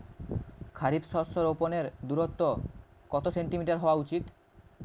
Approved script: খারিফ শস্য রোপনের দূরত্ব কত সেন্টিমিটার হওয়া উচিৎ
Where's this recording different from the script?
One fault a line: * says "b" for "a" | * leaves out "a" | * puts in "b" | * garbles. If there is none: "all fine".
all fine